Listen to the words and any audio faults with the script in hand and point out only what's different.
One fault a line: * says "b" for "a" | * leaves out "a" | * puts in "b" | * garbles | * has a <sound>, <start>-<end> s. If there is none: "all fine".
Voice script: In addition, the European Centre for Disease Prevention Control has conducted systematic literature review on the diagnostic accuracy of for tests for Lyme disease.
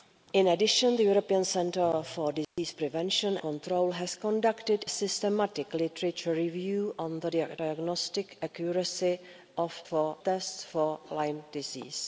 * has a dropout, 2.4-2.6 s